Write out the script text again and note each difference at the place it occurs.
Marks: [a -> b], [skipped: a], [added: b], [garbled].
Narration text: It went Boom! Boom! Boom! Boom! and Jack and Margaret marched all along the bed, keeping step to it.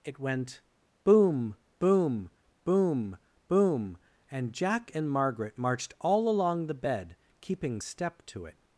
It went Boom! Boom! Boom! Boom! and Jack and Margaret marched all along the bed, keeping step to it.